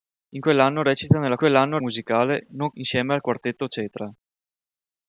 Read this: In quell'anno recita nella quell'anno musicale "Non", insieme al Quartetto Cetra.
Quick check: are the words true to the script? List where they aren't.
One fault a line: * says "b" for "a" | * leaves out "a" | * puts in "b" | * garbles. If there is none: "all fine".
all fine